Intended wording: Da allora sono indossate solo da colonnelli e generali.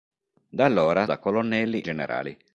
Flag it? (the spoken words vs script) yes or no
yes